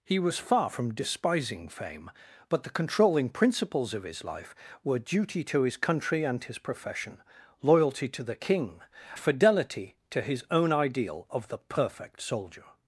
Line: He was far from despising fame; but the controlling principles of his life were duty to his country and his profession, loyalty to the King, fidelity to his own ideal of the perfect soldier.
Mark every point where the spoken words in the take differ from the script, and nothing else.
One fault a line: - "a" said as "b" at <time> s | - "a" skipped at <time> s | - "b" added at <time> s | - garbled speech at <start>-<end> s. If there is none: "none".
none